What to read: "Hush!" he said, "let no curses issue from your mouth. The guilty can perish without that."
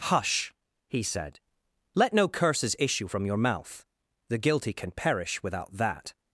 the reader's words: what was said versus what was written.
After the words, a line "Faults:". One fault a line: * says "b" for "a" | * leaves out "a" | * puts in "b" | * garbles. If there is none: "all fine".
"Hush!" he said, "let no curses issue from your mouth. The guilty can perish without that."
Faults:
all fine